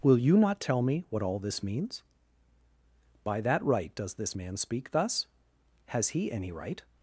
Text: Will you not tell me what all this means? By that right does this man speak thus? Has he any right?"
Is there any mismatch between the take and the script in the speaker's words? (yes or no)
no